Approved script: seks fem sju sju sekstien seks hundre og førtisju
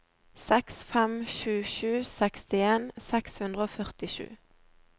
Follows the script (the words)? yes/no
yes